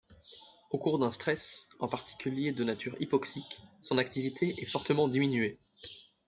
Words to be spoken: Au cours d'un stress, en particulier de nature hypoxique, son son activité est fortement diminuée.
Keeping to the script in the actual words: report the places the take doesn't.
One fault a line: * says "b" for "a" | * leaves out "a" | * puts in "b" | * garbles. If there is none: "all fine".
* leaves out "son"